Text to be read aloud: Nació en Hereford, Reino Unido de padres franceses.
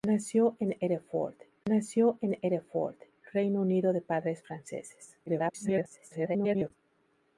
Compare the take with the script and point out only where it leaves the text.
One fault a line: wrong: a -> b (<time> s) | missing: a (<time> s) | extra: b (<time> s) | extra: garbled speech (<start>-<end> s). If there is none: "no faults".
extra: nació en Hereford (1.7 s)
extra: garbled speech (5.3-6.7 s)